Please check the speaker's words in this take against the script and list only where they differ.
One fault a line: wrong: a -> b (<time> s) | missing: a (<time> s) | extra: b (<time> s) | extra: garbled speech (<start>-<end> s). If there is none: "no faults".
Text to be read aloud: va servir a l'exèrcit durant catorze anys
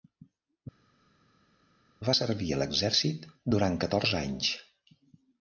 no faults